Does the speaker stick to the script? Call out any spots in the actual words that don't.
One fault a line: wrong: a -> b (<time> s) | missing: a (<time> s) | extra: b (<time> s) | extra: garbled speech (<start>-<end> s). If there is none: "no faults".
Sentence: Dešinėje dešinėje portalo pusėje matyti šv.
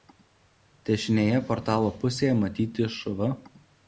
missing: dešinėje (1.4 s)